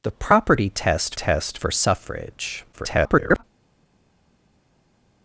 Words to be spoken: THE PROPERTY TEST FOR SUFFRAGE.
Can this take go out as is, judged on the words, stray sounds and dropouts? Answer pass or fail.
fail